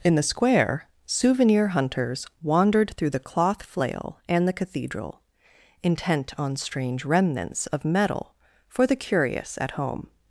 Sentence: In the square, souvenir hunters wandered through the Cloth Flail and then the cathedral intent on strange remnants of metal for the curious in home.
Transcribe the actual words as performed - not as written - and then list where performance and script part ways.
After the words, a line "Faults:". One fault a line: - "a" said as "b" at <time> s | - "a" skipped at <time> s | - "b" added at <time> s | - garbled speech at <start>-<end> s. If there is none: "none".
In the square, souvenir hunters wandered through the Cloth Flail and the cathedral intent on strange remnants of metal for the curious at home.
Faults:
- "then" skipped at 4.5 s
- "in" said as "at" at 9.6 s